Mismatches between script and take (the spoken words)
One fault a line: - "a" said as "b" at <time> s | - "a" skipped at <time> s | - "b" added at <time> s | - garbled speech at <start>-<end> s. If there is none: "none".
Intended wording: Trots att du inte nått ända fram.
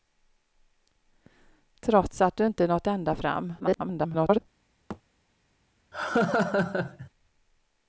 - garbled speech at 3.6-4.4 s